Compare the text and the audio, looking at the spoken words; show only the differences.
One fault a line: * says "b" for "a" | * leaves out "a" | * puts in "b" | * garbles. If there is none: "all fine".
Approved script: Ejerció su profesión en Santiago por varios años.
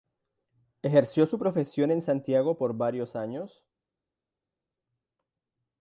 all fine